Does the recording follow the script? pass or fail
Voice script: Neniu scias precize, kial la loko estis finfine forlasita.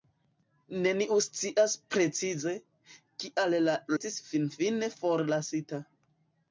fail